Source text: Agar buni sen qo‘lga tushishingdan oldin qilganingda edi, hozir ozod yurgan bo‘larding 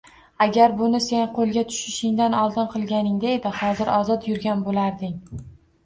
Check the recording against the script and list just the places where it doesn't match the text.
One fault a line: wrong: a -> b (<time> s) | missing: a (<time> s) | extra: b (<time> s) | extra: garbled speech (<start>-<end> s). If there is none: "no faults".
no faults